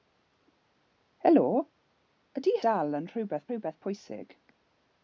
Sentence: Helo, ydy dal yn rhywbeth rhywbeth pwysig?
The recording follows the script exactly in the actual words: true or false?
true